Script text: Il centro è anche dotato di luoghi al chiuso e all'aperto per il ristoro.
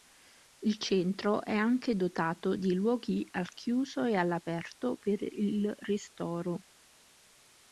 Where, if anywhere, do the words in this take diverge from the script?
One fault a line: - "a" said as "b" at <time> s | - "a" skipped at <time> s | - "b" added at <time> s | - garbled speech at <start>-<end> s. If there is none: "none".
none